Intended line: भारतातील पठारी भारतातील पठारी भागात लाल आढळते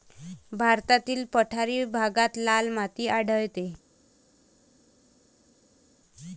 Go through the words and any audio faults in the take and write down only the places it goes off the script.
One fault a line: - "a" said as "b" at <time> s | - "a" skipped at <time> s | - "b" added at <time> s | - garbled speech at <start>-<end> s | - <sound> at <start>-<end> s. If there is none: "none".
- "भारतातील पठारी" skipped at 1.8 s
- "माती" added at 2.7 s